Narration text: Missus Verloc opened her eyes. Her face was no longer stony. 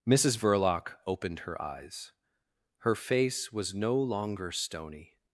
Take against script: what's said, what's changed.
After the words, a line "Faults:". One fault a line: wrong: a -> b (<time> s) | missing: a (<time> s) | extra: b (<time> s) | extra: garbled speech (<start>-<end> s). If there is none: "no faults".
Missus Verloc opened her eyes. Her face was no longer stony.
Faults:
no faults